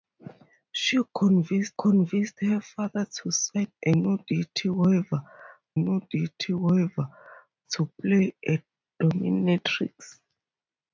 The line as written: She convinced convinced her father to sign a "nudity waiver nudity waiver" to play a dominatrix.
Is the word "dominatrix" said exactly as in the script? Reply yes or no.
yes